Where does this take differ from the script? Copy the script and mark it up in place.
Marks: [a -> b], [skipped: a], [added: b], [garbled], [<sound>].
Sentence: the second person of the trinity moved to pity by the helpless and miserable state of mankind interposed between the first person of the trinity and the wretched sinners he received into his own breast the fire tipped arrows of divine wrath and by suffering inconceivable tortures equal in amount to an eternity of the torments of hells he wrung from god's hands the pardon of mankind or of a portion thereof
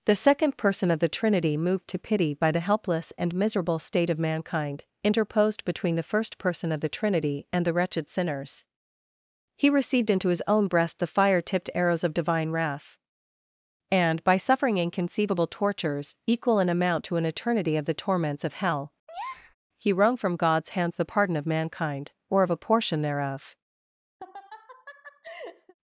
the second person of the trinity moved to pity by the helpless and miserable state of mankind interposed between the first person of the trinity and the wretched sinners he received into his own breast the fire tipped arrows of divine wrath and by suffering inconceivable tortures equal in amount to an eternity of the torments of [hells -> hell] [breath] he wrung from god's hands the pardon of mankind or of a portion thereof [laugh]